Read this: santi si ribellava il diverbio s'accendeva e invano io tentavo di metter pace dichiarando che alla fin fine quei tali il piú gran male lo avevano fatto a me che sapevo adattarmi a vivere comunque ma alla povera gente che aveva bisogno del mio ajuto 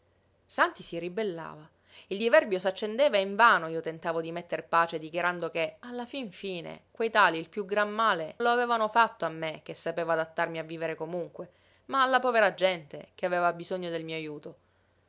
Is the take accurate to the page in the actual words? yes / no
yes